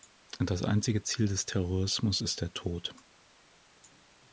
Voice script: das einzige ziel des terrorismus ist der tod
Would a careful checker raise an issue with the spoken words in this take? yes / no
no